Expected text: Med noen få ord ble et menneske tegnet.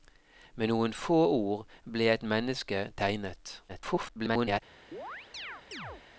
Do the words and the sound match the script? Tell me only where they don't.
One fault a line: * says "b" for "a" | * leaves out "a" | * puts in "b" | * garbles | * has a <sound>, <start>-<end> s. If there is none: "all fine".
* garbles
* has a chirp, 4.9-6.0 s